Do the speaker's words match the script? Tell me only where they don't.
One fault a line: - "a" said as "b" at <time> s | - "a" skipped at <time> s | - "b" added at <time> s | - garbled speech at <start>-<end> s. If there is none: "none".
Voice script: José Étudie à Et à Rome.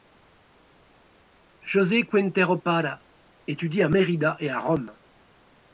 - "Quintero Parra" added at 2.1 s
- "Mérida" added at 3.9 s